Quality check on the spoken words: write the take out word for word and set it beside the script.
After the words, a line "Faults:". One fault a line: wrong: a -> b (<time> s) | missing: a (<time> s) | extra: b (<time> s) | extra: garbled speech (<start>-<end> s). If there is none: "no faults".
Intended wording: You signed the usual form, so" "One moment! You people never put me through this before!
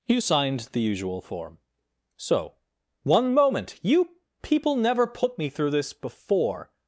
You signed the usual form, so" "One moment! You people never put me through this before!
Faults:
no faults